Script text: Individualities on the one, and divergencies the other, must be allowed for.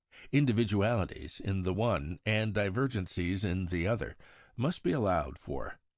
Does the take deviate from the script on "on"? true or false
true